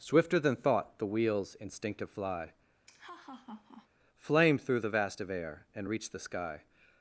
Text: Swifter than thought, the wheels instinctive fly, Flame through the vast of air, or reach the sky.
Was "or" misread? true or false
true